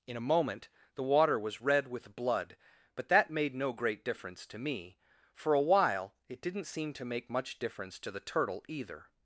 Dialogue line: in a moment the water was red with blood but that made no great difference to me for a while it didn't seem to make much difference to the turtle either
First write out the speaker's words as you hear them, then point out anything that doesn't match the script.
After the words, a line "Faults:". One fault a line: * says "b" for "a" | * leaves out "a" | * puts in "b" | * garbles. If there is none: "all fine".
in a moment the water was red with blood but that made no great difference to me for a while it didn't seem to make much difference to the turtle either
Faults:
all fine